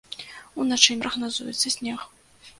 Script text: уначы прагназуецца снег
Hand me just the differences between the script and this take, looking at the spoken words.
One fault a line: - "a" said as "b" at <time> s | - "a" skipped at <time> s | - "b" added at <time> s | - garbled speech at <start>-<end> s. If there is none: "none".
none